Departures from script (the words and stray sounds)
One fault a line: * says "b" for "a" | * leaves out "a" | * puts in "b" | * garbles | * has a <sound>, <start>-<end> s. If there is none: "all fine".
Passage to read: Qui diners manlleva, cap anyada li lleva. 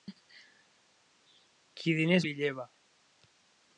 * leaves out "manlleva cap anyada"